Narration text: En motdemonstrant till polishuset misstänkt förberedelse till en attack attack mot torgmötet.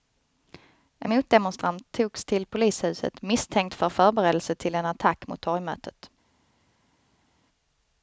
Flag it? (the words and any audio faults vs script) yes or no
yes